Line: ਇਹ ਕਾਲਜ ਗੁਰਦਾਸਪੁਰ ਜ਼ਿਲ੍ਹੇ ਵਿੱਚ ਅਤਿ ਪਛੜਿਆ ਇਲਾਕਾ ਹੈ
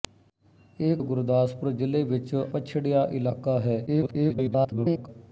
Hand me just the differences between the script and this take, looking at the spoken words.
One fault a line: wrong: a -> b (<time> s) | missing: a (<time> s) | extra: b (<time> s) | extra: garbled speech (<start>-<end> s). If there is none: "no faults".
missing: ਕਾਲਜ (0.9 s)
missing: ਅਤਿ (2.3 s)
extra: garbled speech (3.9-5.1 s)